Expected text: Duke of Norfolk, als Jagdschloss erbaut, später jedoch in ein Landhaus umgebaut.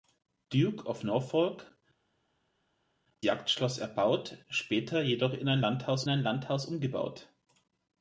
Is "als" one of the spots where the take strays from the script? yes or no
yes